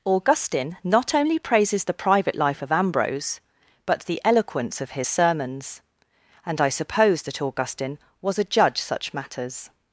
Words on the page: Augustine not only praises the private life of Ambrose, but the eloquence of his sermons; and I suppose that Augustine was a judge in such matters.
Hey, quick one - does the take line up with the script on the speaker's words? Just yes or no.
no